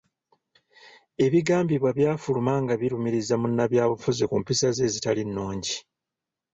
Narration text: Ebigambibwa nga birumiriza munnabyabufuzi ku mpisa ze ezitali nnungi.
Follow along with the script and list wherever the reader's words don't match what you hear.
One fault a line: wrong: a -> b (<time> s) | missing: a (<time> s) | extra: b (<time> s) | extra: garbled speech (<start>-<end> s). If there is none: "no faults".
extra: byafuluma (2.0 s)